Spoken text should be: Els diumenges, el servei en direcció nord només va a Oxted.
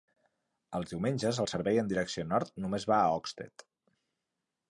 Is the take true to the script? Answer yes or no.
yes